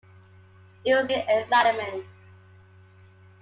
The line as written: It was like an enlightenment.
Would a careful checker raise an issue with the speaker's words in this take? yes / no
yes